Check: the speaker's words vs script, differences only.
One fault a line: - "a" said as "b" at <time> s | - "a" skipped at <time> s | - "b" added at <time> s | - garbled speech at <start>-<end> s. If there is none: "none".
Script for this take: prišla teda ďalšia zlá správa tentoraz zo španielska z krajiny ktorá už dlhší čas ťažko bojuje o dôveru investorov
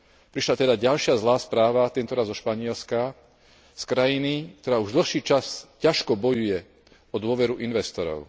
none